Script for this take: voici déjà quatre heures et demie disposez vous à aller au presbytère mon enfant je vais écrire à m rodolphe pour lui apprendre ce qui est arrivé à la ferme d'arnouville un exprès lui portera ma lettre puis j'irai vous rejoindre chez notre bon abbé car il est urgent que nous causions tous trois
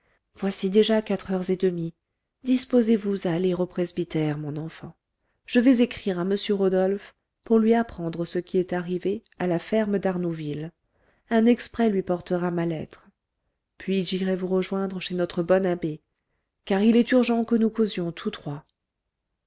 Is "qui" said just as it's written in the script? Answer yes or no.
yes